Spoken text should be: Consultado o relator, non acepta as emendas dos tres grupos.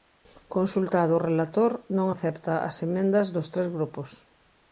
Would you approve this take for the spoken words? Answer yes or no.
yes